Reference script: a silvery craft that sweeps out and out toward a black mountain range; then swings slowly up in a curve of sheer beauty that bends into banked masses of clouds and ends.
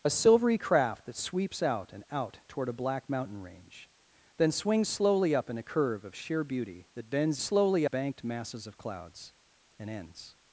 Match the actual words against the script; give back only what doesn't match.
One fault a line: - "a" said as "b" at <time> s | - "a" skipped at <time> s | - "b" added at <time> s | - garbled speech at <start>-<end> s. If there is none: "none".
- "into" said as "slowly" at 7.4 s